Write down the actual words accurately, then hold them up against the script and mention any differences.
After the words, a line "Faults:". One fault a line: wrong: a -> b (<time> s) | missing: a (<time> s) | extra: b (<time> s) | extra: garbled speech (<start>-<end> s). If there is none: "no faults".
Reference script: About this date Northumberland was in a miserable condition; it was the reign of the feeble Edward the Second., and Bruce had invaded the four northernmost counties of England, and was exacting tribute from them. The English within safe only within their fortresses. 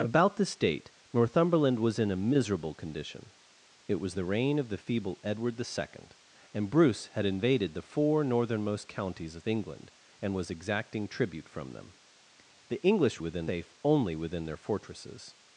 About this date Northumberland was in a miserable condition; it was the reign of the feeble Edward the Second., and Bruce had invaded the four northernmost counties of England, and was exacting tribute from them. The English within safe only within their fortresses.
Faults:
no faults